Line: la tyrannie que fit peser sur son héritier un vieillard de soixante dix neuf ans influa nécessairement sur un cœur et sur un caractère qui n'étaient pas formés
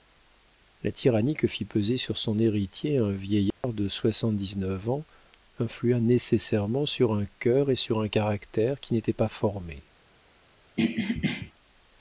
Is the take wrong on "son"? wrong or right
right